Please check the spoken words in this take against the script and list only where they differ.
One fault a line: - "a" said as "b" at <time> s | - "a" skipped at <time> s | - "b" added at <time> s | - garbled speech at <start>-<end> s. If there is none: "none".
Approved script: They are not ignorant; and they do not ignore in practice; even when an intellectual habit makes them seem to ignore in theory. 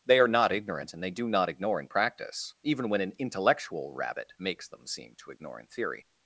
- "habit" said as "rabbit" at 3.9 s